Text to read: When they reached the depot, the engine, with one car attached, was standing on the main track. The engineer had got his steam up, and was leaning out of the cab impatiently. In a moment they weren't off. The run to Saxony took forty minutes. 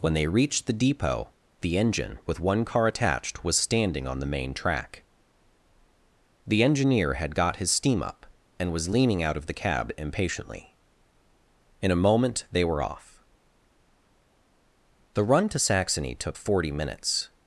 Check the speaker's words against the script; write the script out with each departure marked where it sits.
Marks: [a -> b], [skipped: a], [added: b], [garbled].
When they reached the depot, the engine, with one car attached, was standing on the main track. The engineer had got his steam up, and was leaning out of the cab impatiently. In a moment they [weren't -> were] off. The run to Saxony took forty minutes.